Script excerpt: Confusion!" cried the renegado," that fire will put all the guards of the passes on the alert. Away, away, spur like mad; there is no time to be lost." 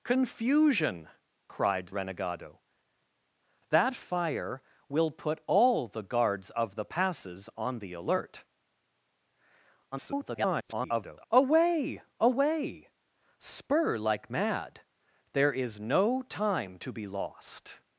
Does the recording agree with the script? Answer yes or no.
no